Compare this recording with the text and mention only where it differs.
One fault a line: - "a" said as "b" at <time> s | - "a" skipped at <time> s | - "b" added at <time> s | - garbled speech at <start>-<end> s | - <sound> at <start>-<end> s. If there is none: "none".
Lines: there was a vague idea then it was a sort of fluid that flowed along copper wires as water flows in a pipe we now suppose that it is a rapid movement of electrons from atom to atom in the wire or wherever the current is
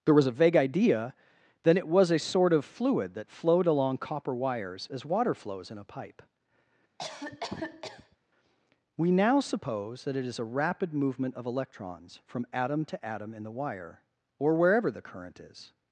- cough at 7.0-8.2 s